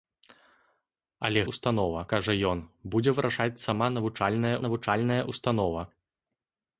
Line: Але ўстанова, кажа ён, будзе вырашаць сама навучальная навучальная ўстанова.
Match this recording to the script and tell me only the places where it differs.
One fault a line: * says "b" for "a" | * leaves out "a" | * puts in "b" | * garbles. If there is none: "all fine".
all fine